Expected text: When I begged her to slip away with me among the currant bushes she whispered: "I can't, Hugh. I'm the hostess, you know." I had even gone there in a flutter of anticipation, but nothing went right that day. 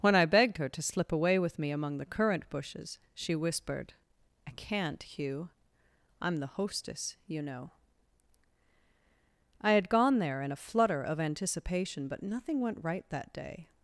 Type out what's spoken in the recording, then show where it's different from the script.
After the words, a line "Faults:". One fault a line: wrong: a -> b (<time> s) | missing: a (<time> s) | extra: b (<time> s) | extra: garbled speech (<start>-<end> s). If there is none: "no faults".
When I begged her to slip away with me among the currant bushes she whispered: "I can't, Hugh. I'm the hostess, you know." I had gone there in a flutter of anticipation, but nothing went right that day.
Faults:
missing: even (9.9 s)